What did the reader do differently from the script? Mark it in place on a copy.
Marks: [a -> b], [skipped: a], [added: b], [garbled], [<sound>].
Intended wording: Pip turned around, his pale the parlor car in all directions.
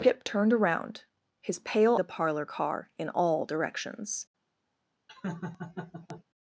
Pip turned around, his pale the parlor car in all directions. [laugh]